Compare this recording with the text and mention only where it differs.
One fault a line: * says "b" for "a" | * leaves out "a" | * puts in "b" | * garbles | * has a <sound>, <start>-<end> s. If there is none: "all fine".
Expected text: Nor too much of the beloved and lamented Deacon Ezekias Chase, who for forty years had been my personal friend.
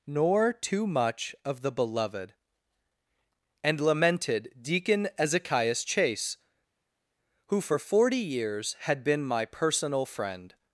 all fine